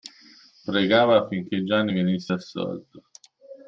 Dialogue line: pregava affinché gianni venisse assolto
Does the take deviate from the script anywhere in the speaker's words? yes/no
no